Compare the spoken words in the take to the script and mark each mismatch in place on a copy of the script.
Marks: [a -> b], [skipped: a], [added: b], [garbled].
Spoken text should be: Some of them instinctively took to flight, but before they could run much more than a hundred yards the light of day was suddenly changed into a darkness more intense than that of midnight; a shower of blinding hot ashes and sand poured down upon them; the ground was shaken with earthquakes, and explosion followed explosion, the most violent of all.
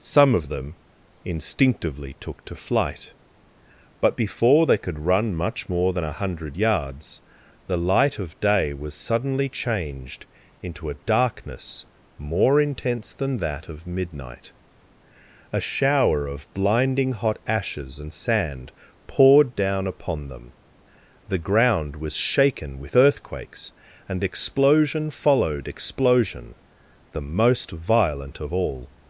Some of them instinctively took to flight, but before they could run much more than a hundred yards the light of day was suddenly changed into a darkness more intense than that of midnight; a shower of blinding hot ashes and sand poured down upon them; the ground was shaken with earthquakes, and explosion followed explosion, the most violent of all.